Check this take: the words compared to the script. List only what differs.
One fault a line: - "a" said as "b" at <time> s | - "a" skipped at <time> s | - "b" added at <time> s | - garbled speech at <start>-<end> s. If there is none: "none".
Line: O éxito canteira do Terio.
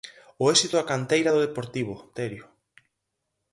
- "da" added at 0.7 s
- "Deportivo" added at 1.5 s